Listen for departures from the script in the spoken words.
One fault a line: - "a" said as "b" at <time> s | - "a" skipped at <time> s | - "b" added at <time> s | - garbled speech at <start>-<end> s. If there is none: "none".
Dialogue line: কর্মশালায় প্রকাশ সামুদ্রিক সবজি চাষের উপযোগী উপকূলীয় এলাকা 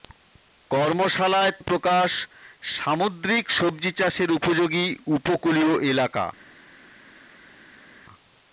none